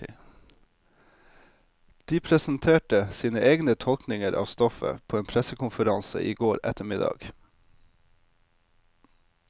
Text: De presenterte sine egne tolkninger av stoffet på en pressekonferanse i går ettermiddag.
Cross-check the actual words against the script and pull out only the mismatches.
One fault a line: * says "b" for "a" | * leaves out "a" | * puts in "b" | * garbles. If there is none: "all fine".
all fine